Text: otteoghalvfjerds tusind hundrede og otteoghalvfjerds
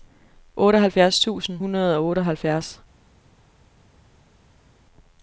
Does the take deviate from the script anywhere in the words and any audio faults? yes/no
no